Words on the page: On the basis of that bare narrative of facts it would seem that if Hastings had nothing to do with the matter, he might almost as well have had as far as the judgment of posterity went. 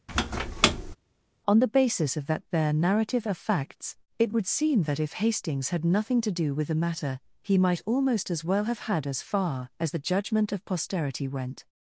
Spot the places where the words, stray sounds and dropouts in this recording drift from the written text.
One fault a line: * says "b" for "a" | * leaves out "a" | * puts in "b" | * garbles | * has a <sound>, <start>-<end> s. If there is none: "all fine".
* has a squeak, 0.1-1.0 s